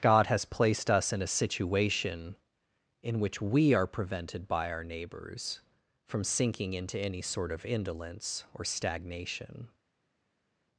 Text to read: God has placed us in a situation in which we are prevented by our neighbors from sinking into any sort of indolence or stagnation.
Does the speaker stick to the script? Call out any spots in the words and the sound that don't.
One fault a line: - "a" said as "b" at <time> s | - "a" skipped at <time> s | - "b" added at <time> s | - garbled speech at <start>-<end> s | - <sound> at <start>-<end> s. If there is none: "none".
none